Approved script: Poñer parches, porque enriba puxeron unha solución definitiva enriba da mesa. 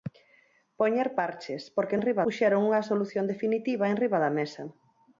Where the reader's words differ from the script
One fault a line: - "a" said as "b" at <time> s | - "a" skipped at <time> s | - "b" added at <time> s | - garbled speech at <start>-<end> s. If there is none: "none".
none